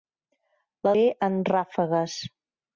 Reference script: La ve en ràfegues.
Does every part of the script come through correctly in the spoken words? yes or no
yes